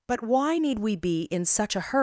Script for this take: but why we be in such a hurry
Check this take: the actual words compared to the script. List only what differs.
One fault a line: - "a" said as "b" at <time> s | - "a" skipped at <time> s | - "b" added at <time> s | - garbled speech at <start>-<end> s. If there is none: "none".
- "need" added at 0.6 s